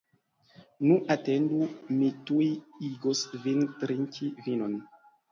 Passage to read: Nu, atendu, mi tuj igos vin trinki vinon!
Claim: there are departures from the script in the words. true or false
false